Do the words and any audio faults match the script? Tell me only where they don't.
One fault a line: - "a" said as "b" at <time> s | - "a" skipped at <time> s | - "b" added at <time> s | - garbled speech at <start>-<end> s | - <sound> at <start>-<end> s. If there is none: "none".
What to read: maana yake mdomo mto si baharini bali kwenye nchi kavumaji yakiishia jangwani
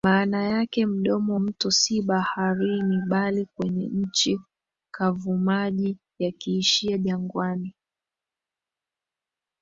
none